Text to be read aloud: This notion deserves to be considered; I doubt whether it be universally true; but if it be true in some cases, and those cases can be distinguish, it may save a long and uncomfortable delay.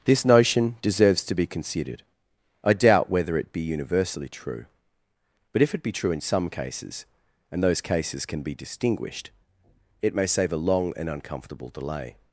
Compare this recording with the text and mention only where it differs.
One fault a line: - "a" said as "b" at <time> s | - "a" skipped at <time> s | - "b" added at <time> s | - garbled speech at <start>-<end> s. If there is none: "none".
- "distinguish" said as "distinguished" at 8.5 s